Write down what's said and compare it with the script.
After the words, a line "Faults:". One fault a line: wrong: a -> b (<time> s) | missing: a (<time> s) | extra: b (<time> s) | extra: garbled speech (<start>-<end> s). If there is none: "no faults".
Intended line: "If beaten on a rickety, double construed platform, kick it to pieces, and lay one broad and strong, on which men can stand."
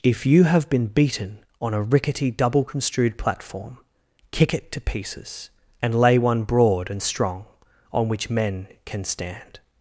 "If you have been beaten on a rickety, double construed platform, kick it to pieces, and lay one broad and strong, on which men can stand."
Faults:
extra: you have been (0.2 s)